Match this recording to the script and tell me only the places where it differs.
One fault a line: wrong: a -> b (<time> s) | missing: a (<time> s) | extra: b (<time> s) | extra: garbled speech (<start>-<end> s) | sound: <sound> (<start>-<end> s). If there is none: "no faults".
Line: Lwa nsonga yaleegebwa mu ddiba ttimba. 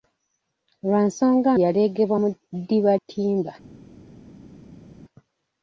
no faults